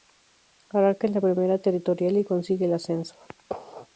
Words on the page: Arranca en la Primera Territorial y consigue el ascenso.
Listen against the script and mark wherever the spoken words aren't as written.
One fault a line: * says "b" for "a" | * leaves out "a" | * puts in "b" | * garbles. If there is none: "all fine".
all fine